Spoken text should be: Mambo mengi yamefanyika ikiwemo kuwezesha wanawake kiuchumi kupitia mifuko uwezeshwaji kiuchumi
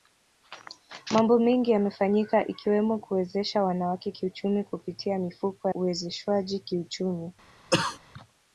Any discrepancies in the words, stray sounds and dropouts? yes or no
yes